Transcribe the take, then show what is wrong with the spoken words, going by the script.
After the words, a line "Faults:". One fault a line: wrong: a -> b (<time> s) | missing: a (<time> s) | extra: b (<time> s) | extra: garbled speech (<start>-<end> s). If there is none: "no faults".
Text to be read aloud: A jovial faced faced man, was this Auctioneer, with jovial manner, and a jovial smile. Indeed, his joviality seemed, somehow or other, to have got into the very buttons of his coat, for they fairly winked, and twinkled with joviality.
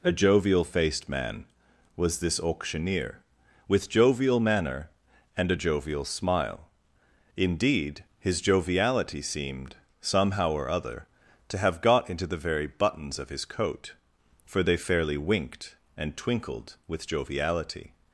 A jovial faced man, was this Auctioneer, with jovial manner, and a jovial smile. Indeed, his joviality seemed, somehow or other, to have got into the very buttons of his coat, for they fairly winked, and twinkled with joviality.
Faults:
missing: faced (1.1 s)